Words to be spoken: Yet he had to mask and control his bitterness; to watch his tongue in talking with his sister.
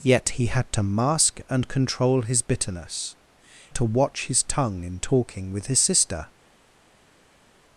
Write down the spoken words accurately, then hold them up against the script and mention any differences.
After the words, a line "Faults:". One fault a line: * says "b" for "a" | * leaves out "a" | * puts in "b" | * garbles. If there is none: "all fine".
Yet he had to mask and control his bitterness; to watch his tongue in talking with his sister.
Faults:
all fine